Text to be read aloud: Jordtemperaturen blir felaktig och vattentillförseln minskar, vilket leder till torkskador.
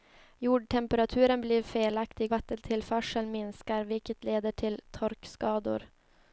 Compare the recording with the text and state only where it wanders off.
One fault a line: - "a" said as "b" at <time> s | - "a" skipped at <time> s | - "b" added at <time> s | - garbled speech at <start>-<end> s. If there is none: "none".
- "och" skipped at 2.3 s